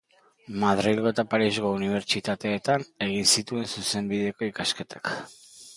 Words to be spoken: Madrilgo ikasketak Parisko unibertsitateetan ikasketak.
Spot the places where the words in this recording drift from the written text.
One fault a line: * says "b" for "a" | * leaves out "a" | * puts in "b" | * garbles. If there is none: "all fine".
* says "eta" for "ikasketak"
* puts in "egin zituen Zuzenbideko"